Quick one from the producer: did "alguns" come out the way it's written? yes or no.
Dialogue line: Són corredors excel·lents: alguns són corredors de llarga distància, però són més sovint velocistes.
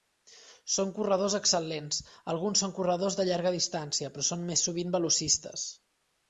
yes